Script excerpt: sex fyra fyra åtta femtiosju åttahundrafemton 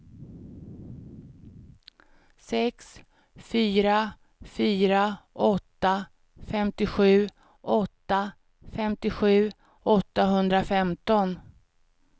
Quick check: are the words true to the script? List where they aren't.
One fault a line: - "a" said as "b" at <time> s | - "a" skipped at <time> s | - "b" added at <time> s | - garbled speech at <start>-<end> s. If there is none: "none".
- "åtta femtiosju" added at 7.6 s